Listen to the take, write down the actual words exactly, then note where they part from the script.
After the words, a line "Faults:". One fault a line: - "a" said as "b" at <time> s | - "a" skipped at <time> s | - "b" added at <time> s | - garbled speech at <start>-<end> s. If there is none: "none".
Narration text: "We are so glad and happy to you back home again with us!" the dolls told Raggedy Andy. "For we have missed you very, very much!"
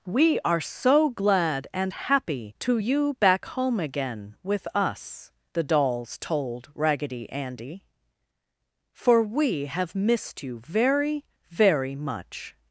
"We are so glad and happy to you back home again with us!" the dolls told Raggedy Andy. "For we have missed you very, very much!"
Faults:
none